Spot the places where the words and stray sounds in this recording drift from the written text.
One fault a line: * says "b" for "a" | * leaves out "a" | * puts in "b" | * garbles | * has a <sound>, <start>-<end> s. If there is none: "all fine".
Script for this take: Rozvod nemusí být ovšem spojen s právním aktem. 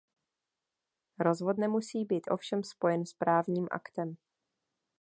all fine